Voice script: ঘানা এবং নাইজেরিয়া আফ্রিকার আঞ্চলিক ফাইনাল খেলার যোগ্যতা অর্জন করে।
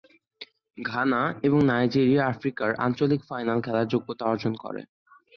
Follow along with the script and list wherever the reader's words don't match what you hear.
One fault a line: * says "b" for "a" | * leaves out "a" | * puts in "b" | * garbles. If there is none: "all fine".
all fine